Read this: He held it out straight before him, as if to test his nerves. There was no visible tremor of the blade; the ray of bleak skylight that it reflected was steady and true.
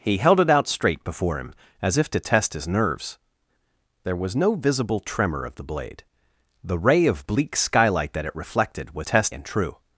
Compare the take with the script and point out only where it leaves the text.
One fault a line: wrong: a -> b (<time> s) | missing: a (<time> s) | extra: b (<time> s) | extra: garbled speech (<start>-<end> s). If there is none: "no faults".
wrong: steady -> test (9.0 s)